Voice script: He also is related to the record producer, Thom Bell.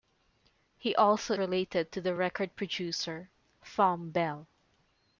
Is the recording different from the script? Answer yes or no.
yes